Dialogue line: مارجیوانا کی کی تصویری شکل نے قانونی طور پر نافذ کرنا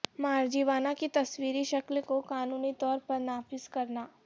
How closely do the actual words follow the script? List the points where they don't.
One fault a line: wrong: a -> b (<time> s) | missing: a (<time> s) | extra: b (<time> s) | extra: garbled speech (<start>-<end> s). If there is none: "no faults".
missing: کی (1.1 s)
wrong: نے -> کو (2.0 s)